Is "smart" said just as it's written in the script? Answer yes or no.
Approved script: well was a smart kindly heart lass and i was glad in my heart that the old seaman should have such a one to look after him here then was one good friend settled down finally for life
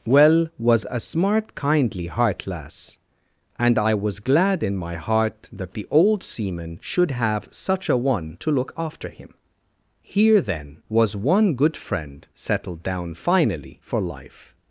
yes